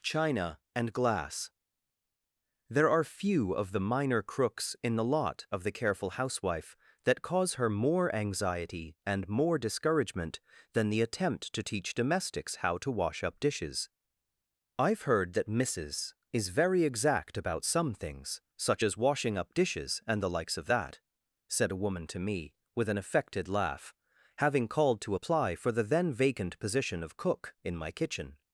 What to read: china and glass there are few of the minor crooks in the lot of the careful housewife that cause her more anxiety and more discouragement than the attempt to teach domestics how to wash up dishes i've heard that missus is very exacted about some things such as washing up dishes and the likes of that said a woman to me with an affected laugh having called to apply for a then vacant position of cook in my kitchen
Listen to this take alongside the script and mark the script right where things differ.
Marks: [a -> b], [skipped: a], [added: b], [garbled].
china and glass there are few of the minor crooks in the lot of the careful housewife that cause her more anxiety and more discouragement than the attempt to teach domestics how to wash up dishes i've heard that missus is very [exacted -> exact] about some things such as washing up dishes and the likes of that said a woman to me with an affected laugh having called to apply for [a -> the] then vacant position of cook in my kitchen